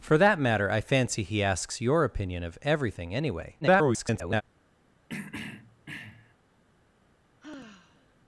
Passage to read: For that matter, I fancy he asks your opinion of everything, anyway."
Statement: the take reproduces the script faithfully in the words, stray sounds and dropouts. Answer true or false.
false